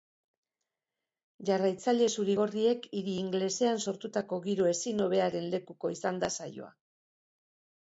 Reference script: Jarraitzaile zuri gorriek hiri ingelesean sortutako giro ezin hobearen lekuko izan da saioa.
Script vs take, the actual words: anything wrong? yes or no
no